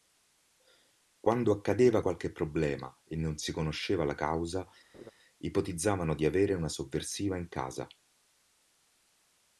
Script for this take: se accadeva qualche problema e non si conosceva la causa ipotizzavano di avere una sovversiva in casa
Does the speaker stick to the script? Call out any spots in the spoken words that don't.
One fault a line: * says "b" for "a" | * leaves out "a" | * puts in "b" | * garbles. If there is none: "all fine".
* says "quando" for "se"